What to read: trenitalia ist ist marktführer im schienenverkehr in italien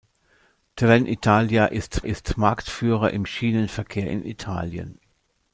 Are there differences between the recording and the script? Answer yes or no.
no